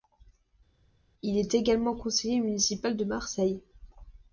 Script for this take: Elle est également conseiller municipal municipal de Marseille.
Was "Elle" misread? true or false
true